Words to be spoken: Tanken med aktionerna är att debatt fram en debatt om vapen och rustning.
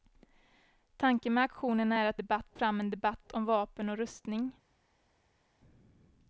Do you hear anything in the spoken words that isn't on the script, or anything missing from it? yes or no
no